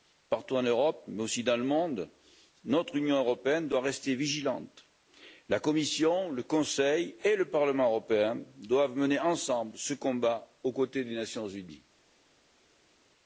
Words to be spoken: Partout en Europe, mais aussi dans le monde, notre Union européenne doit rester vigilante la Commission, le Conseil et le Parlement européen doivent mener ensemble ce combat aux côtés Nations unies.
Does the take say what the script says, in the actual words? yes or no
no